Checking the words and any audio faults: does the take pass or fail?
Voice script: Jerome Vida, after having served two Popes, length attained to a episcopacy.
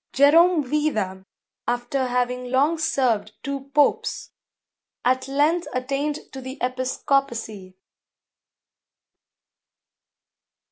fail